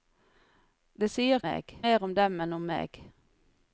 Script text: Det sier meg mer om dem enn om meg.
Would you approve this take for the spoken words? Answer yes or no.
yes